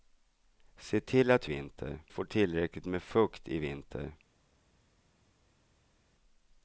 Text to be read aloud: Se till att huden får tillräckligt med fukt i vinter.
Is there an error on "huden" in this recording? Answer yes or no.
yes